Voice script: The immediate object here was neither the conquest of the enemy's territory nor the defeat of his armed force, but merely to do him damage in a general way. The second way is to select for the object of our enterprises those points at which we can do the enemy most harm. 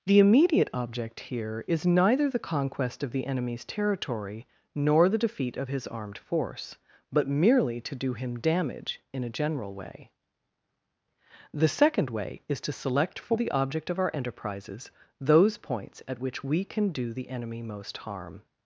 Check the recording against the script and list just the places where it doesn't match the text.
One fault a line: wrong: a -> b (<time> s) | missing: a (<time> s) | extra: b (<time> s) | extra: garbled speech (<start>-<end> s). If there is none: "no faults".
wrong: was -> is (1.7 s)